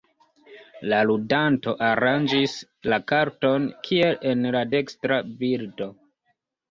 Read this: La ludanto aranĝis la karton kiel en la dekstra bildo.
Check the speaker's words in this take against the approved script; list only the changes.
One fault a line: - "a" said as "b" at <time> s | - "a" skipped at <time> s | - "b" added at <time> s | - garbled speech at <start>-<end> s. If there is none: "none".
none